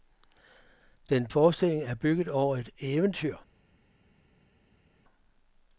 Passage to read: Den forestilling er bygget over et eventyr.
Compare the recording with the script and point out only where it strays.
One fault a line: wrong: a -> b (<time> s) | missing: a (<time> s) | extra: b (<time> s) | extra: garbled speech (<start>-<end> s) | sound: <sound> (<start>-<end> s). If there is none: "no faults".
no faults